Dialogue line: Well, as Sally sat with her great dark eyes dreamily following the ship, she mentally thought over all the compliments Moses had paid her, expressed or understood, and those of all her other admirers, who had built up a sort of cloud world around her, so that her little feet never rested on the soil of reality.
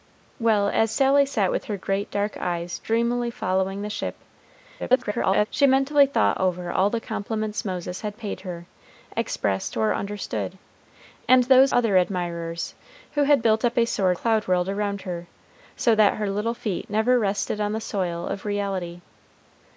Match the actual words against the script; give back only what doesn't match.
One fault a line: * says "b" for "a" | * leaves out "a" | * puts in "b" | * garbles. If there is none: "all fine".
* garbles
* leaves out "of all her"
* leaves out "of"